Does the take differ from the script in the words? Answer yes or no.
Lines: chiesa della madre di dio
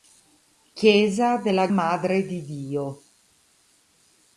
no